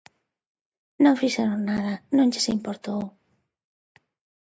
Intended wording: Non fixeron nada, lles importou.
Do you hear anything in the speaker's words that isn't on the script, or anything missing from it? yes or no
yes